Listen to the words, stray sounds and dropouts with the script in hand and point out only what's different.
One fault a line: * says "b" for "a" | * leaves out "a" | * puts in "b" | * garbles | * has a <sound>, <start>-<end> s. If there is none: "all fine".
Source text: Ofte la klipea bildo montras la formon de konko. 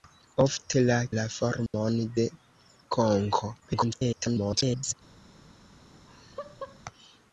* leaves out "klipea bildo montras"
* has a dropout, 1.7-1.7 s
* garbles
* has a laugh, 5.9-6.8 s